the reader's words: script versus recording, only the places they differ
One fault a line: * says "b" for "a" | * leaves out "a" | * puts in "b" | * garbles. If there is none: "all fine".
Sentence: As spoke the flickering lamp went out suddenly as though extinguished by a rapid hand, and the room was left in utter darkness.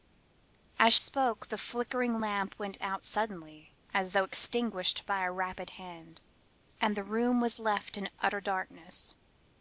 all fine